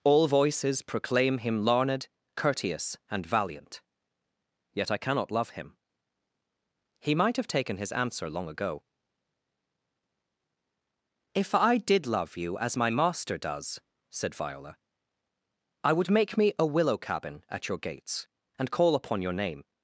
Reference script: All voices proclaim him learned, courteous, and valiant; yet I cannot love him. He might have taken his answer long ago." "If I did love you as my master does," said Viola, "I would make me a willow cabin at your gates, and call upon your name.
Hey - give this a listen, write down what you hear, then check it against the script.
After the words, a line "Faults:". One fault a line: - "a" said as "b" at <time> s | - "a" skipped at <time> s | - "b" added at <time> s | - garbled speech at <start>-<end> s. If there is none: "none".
All voices proclaim him learned, courteous, and valiant; yet I cannot love him. He might have taken his answer long ago." "If I did love you as my master does," said Viola, "I would make me a willow cabin at your gates, and call upon your name.
Faults:
none